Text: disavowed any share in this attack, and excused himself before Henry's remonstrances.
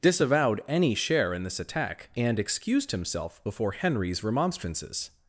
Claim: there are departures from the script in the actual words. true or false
false